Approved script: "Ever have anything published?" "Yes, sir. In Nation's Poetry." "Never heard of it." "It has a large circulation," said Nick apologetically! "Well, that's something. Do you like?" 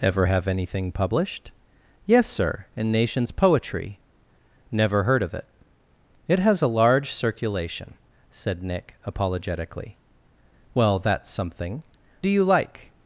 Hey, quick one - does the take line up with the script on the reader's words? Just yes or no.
yes